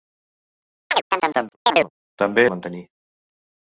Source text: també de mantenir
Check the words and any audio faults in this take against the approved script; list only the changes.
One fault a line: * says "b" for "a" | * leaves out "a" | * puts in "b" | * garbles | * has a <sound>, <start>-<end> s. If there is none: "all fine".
* has a chirp, 0.9-1.9 s